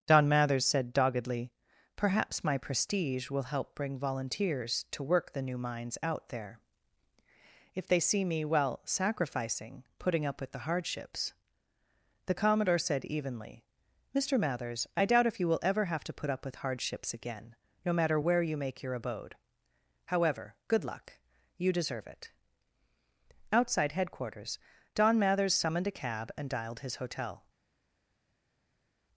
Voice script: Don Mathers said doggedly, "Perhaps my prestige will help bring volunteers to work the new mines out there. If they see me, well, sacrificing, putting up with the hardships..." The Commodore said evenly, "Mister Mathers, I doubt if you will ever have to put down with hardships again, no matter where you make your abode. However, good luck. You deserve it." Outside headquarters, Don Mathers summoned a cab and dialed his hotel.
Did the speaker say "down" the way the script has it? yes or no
no